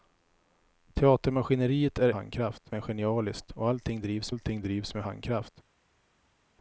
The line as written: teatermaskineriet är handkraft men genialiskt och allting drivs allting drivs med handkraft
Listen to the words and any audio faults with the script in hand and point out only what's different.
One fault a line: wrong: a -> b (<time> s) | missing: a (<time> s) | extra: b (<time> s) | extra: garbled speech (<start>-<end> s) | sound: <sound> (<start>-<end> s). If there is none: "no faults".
no faults